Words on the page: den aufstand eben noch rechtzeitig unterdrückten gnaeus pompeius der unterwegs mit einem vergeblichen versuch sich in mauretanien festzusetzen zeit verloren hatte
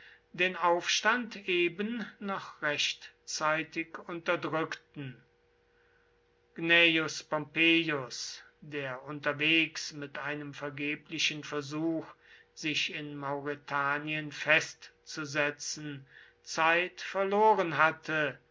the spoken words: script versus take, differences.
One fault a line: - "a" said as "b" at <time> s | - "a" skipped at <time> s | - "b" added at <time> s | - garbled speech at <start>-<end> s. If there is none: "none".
none